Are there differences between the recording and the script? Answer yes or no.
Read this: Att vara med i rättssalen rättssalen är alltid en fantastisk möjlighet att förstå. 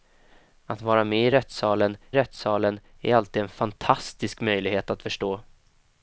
no